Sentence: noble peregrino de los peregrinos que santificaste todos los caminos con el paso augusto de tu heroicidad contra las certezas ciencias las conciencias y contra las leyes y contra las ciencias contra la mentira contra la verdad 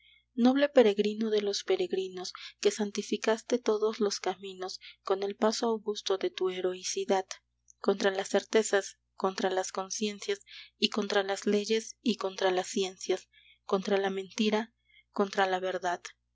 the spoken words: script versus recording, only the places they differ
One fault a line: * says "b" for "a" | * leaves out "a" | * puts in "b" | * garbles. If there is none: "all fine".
* says "contra" for "ciencias"